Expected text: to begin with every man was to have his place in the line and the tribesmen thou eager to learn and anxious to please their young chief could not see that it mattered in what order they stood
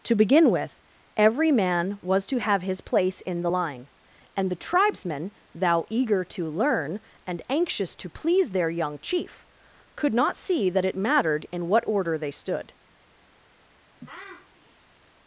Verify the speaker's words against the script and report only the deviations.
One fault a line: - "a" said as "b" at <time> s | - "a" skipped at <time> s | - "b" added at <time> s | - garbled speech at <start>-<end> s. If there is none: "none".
none